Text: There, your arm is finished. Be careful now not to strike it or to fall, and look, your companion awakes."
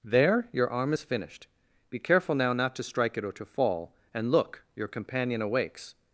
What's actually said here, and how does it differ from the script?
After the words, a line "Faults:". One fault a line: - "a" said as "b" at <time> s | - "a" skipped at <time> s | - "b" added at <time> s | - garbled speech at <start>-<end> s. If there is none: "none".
There, your arm is finished. Be careful now not to strike it or to fall, and look, your companion awakes."
Faults:
none